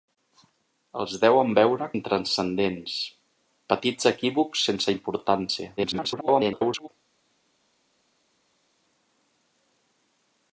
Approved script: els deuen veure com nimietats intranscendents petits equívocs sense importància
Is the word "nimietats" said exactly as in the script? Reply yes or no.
no